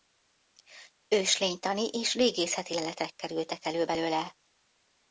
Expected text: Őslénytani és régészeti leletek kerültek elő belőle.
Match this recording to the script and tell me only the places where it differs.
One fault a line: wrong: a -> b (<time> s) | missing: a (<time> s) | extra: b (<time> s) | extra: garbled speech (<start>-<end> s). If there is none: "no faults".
no faults